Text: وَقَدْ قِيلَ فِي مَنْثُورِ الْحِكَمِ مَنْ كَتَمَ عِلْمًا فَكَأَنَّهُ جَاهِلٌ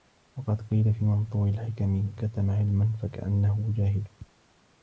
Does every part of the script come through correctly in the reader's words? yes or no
no